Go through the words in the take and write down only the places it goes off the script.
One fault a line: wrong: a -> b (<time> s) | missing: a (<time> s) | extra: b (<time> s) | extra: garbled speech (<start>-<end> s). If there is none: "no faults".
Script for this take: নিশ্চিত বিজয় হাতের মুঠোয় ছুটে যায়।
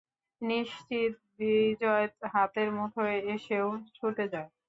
extra: এসেও (3.3 s)